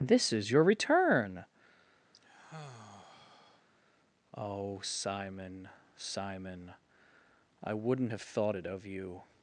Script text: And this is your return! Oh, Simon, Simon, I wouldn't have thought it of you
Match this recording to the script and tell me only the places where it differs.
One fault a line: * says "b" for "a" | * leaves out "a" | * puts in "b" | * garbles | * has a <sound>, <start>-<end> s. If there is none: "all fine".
* leaves out "And"
* has a sigh, 2.1-3.7 s